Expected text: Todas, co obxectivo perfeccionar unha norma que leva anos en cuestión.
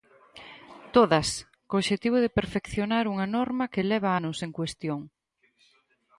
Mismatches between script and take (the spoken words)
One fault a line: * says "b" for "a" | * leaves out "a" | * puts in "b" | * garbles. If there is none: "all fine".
* puts in "de"